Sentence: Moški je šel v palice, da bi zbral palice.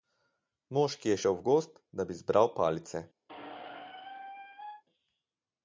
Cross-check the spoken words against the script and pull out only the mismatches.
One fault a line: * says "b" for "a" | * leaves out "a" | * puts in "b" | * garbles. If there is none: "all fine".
* says "gozd" for "palice"